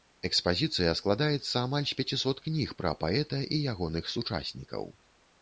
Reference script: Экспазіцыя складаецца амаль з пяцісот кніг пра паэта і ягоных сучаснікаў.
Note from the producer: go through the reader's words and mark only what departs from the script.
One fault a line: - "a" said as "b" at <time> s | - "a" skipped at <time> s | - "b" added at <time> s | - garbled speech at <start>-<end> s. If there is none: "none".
none